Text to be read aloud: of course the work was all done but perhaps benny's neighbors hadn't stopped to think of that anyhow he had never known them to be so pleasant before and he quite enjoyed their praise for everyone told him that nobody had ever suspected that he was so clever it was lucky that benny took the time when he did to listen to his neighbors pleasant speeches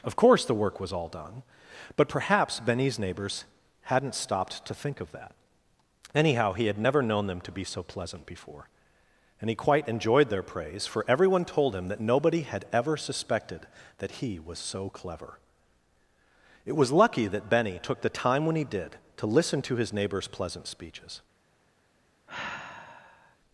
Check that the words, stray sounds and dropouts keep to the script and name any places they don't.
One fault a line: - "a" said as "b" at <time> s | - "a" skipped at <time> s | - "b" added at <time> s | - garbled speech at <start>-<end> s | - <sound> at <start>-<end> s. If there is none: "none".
- sigh at 22.3-23.4 s